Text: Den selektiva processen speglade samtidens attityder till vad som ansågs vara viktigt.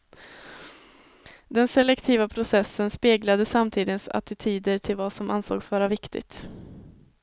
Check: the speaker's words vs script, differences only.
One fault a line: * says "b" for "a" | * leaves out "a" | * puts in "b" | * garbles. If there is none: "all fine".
all fine